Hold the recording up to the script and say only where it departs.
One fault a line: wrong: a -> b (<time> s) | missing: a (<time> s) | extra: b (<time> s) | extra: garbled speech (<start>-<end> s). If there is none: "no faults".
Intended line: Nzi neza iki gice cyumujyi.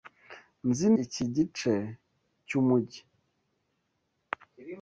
missing: neza (0.9 s)